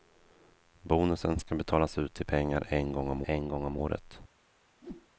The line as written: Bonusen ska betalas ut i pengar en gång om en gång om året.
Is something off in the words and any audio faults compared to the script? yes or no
yes